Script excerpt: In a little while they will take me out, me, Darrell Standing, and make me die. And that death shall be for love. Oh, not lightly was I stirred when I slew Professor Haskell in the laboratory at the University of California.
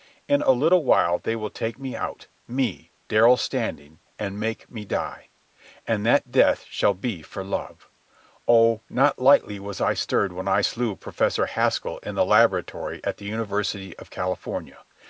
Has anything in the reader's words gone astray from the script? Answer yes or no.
no